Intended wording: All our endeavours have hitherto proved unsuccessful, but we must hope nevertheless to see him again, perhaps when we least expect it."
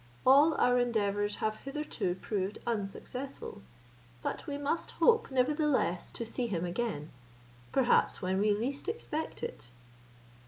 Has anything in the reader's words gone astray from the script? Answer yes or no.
no